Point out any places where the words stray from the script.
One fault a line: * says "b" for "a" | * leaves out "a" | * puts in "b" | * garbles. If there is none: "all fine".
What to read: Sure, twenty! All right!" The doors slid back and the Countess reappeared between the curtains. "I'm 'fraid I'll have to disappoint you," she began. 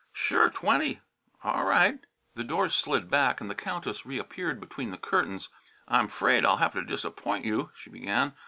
all fine